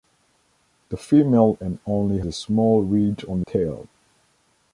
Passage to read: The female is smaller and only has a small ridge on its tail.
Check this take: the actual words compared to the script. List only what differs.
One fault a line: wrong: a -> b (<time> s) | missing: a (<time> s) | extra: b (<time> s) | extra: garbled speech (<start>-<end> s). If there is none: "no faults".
missing: is smaller (1.6 s)
missing: has (2.2 s)
missing: its (3.4 s)